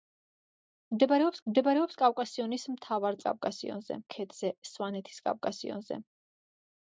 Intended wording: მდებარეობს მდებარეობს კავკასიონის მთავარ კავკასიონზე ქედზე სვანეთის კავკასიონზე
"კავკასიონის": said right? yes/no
yes